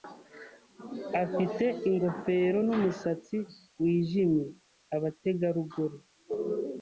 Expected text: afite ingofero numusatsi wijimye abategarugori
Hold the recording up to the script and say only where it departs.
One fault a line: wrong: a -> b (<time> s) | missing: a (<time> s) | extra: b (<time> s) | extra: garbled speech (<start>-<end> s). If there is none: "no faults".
no faults